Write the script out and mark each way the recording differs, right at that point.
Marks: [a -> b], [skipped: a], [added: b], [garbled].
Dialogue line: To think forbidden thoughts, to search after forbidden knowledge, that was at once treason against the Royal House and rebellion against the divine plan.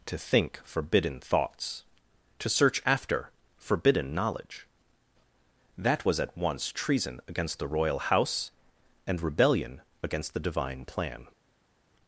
To think forbidden thoughts, to search after forbidden knowledge, that was at once treason against the Royal House and rebellion against the divine plan.